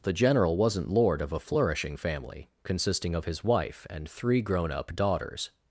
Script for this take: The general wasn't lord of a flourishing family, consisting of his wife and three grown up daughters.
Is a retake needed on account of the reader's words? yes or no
no